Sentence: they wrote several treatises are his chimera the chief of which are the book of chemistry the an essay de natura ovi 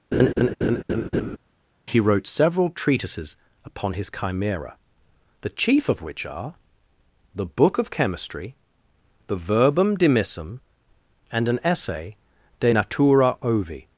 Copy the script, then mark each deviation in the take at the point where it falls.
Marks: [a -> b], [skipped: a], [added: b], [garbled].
[they -> he] wrote several treatises [are -> upon] his chimera the chief of which are the book of chemistry the [added: verbum dimissum and] an essay de natura ovi